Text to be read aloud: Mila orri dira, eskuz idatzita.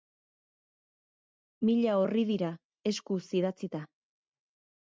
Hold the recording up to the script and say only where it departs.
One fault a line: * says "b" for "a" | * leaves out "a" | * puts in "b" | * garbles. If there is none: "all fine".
all fine